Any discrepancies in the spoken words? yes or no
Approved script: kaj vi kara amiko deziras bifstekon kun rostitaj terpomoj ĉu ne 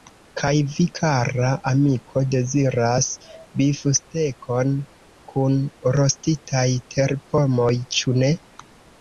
no